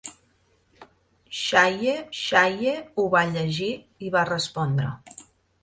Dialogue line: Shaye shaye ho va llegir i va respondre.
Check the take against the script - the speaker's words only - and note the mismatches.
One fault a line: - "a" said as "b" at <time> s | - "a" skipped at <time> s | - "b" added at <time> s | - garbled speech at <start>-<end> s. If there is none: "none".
none